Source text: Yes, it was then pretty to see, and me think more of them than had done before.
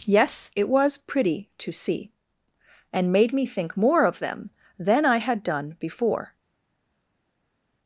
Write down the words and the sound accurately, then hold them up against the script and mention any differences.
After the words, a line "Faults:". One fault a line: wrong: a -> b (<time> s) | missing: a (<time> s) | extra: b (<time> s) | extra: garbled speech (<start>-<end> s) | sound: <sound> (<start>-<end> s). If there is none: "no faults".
Yes, it was pretty to see, and made me think more of them than I had done before.
Faults:
missing: then (1.0 s)
extra: made (3.1 s)
extra: I (5.0 s)